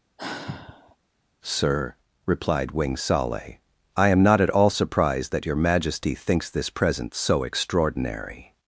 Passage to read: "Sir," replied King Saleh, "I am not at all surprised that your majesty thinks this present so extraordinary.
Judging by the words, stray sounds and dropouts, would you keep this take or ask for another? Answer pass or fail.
fail